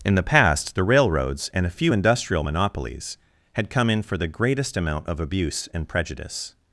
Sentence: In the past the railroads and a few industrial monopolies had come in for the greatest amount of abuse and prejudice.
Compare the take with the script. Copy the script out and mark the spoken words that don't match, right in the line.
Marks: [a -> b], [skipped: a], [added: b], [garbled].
In the past the railroads and a few industrial monopolies had come in for the greatest amount of abuse and prejudice.